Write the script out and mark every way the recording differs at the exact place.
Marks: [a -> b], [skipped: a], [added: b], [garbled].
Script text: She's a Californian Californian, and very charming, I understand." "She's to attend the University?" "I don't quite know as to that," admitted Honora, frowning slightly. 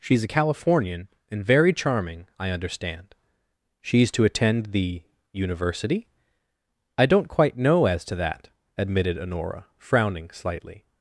She's a Californian [skipped: Californian,] and very charming, I understand." "She's to attend the University?" "I don't quite know as to that," admitted Honora, frowning slightly.